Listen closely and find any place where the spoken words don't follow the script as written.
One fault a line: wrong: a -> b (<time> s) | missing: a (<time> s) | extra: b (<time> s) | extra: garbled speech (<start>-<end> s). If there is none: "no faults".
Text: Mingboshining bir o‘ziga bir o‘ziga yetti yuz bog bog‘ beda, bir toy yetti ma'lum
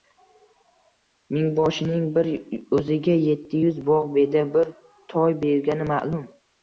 missing: bir o‘ziga (3.2 s)
missing: bog (4.1 s)
wrong: yetti -> bergani (5.5 s)